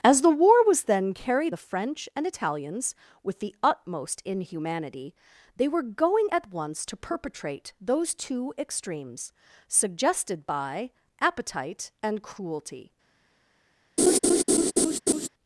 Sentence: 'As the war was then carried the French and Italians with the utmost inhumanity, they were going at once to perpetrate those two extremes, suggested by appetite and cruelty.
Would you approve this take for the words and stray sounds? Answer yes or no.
no